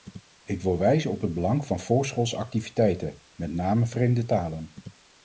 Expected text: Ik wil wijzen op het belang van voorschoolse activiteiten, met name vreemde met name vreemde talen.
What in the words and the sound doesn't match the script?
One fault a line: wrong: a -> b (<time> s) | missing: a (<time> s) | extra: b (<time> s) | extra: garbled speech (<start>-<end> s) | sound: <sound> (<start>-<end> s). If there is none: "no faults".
missing: met name vreemde (4.2 s)